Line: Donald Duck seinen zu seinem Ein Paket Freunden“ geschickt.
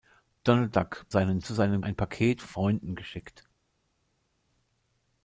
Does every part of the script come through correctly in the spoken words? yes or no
yes